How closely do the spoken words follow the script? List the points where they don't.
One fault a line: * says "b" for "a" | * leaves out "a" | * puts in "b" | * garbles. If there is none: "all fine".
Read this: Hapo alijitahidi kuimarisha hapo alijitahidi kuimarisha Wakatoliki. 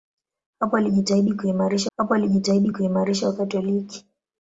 all fine